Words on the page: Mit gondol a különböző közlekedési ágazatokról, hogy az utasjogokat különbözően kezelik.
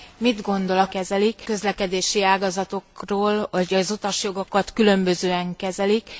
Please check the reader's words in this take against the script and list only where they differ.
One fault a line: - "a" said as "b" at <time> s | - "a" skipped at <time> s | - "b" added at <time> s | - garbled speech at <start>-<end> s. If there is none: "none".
- "különböző" said as "kezelik" at 0.9 s